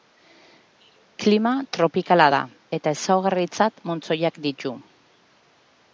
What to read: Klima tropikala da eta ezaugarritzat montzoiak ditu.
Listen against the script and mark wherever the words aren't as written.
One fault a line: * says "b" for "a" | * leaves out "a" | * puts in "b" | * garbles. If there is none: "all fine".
all fine